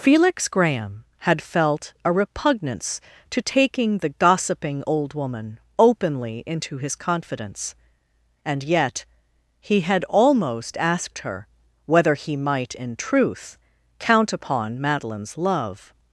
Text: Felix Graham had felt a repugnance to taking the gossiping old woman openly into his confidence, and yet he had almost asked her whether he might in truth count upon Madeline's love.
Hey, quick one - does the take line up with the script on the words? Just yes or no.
yes